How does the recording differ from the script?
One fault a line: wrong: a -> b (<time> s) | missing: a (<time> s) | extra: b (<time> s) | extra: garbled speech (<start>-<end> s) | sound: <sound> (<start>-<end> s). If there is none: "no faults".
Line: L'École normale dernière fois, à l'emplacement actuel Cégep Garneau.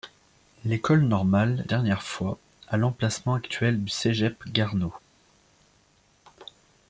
no faults